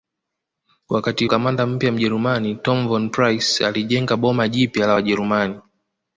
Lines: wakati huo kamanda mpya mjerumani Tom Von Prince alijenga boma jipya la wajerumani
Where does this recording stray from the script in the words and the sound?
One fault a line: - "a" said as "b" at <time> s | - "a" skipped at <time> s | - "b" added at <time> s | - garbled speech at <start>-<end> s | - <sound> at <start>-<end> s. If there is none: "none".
- "huo" skipped at 1.2 s